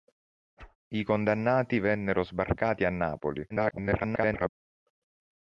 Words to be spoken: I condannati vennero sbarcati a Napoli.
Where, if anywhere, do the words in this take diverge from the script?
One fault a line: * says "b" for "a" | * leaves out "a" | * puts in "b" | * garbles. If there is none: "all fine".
* garbles